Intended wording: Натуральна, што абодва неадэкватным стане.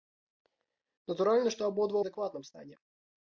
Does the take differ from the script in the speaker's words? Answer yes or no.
no